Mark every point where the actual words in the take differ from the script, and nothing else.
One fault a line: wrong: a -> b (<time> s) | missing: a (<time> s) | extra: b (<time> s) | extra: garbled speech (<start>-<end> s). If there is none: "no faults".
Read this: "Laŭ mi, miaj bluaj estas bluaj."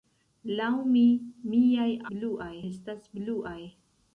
no faults